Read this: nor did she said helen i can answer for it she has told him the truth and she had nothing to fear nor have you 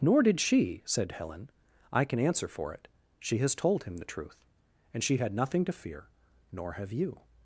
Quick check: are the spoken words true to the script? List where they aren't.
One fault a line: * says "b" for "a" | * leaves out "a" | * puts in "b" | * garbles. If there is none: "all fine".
all fine